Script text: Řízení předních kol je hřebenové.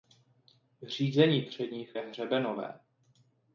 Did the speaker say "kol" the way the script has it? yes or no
no